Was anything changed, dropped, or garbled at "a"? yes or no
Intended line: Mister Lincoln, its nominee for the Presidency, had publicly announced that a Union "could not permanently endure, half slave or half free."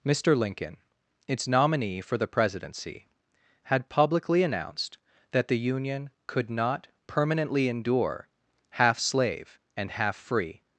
yes